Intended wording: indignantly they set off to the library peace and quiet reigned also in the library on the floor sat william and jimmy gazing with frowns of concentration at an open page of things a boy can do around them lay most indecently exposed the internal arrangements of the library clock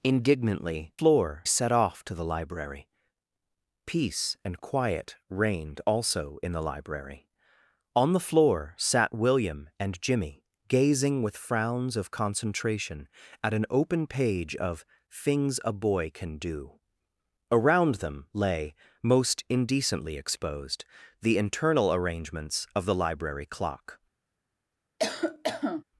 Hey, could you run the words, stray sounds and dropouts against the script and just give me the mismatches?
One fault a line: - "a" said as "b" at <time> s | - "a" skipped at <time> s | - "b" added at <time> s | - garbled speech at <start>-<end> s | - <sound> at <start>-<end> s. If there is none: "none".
- "they" said as "floor" at 1.0 s
- cough at 25.0-25.8 s